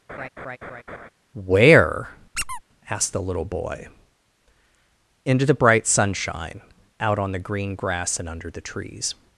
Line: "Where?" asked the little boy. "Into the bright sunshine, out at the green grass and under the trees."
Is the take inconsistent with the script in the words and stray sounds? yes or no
yes